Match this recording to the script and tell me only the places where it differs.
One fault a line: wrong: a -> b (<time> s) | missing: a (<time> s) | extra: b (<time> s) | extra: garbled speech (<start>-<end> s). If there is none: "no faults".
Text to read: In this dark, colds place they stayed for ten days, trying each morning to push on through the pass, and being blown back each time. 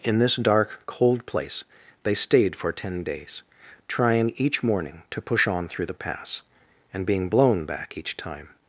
wrong: colds -> cold (0.8 s)